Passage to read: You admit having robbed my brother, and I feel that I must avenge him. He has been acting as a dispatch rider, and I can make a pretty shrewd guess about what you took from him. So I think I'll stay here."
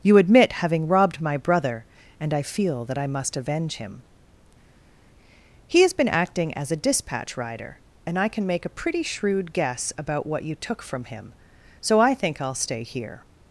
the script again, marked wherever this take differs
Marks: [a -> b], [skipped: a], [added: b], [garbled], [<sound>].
You admit having robbed my brother, and I feel that I must avenge him. He has been acting as a dispatch rider, and I can make a pretty shrewd guess about what you took from him. So I think I'll stay here."